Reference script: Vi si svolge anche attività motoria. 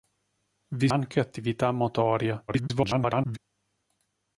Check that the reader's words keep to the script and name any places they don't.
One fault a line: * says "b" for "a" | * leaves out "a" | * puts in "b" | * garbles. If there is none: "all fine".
* leaves out "si svolge"
* garbles